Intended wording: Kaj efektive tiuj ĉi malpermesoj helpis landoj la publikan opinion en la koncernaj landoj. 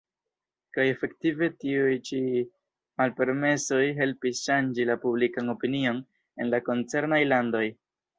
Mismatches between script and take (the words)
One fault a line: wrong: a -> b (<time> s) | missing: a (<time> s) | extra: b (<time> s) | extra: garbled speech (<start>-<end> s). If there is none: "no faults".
wrong: landoj -> ŝanĝi (4.5 s)